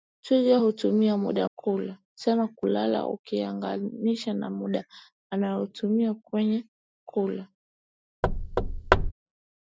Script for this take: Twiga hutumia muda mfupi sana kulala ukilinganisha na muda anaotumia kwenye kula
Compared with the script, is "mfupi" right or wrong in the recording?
wrong